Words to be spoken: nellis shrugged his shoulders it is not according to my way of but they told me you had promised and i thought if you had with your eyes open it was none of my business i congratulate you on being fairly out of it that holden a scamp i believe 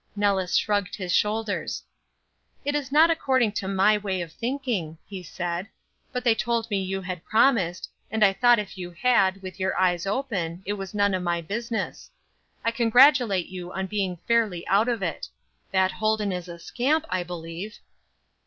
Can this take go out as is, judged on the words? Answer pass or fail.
fail